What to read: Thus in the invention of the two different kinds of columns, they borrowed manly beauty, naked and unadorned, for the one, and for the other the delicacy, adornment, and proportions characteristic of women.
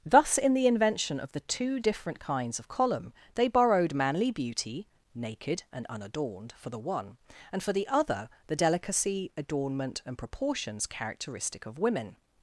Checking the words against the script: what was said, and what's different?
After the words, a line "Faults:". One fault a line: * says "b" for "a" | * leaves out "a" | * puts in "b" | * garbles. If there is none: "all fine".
Thus in the invention of the two different kinds of column, they borrowed manly beauty, naked and unadorned, for the one, and for the other the delicacy, adornment, and proportions characteristic of women.
Faults:
* says "column" for "columns"